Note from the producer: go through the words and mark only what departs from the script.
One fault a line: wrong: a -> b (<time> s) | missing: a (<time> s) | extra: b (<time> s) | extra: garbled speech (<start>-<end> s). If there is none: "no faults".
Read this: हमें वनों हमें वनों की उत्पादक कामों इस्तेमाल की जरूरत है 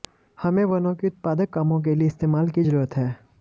missing: हमें वनों (0.9 s)
extra: के लिए (1.8 s)